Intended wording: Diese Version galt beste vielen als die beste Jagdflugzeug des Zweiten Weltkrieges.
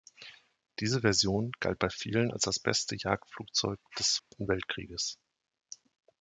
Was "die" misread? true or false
true